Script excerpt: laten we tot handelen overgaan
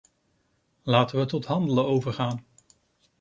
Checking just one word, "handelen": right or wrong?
right